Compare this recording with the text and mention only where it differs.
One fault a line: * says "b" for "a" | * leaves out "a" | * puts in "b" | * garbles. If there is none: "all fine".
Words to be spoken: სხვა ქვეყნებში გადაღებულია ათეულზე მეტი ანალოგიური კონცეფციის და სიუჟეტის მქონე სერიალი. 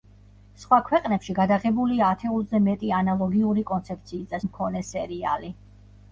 * leaves out "სიუჟეტის"